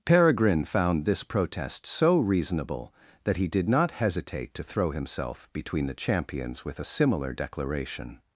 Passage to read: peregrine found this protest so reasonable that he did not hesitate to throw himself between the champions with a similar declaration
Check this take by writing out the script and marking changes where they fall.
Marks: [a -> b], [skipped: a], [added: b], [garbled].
peregrine found this protest so reasonable that he did not hesitate to throw himself between the champions with a similar declaration